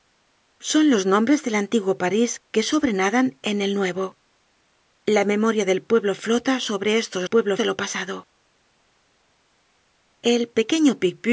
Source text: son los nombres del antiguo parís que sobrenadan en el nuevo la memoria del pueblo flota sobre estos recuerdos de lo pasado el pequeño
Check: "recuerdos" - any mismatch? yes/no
yes